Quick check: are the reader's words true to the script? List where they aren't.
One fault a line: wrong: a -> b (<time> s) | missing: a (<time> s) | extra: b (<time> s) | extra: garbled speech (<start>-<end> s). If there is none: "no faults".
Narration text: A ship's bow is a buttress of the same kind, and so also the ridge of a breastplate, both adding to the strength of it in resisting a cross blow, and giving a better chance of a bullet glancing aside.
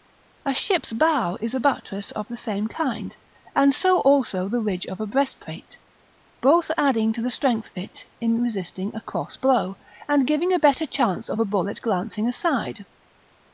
no faults